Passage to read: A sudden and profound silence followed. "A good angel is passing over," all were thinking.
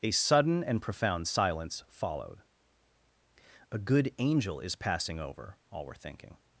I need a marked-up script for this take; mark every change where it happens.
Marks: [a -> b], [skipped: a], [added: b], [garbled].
A sudden and profound silence followed. "A good angel is passing over," all were thinking.